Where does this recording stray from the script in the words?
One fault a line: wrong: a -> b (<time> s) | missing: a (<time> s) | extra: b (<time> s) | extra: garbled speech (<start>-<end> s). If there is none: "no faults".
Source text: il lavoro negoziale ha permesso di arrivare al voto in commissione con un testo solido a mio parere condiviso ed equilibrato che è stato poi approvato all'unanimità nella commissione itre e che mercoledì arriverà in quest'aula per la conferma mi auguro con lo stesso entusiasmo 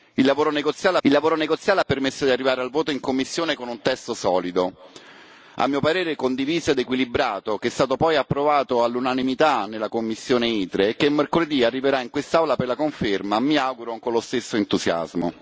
extra: il lavoro negoziale (1.0 s)